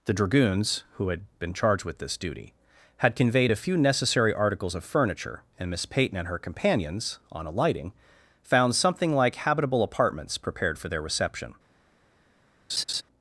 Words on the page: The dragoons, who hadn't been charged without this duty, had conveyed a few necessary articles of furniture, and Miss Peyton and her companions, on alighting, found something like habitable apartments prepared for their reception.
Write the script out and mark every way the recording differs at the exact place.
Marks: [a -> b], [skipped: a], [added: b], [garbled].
The dragoons, who [hadn't -> had] been charged [without -> with] this duty, had conveyed a few necessary articles of furniture, and Miss Peyton and her companions, on alighting, found something like habitable apartments prepared for their reception.